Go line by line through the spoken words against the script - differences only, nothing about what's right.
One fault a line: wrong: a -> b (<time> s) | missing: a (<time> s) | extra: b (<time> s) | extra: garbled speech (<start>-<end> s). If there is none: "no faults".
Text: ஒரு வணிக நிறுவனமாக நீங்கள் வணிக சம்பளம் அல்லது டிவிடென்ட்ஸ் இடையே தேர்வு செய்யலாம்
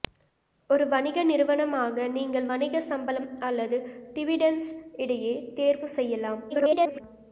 extra: garbled speech (6.5-7.0 s)